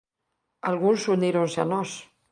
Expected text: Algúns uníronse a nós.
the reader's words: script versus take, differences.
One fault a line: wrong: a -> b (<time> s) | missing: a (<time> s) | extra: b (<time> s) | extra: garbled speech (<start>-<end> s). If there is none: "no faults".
no faults